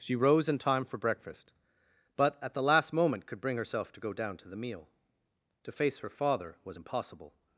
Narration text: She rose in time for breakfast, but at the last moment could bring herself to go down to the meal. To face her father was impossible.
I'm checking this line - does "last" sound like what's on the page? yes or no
yes